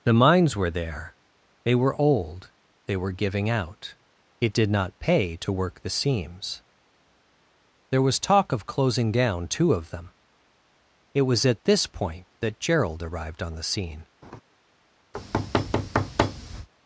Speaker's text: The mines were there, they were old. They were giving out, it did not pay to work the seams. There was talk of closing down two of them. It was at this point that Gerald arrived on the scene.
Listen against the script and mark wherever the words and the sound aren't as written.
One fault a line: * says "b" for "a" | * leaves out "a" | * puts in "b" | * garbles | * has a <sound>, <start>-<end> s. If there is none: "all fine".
* has a laugh, 14.2-14.4 s
* has a thud, 15.1-16.7 s